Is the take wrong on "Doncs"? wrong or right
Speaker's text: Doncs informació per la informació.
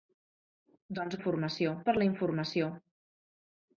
right